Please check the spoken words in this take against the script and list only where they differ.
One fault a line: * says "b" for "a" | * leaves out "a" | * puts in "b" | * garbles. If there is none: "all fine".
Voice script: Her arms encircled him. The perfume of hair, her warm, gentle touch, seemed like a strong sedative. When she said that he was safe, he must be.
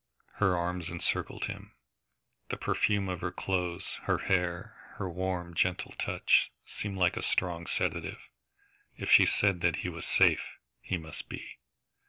* puts in "her clothes her"
* says "If" for "When"